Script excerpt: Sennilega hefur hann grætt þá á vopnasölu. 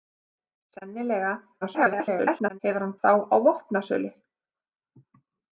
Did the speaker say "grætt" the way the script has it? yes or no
no